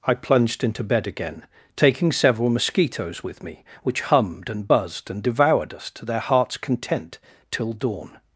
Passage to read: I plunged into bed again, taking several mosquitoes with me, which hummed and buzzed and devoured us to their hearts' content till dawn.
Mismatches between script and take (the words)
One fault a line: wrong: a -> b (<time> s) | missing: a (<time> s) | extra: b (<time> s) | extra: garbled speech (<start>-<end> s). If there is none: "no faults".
no faults